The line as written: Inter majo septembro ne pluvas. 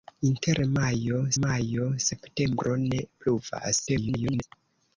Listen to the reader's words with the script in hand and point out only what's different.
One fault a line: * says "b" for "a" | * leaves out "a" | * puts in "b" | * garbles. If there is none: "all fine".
* puts in "majo"
* garbles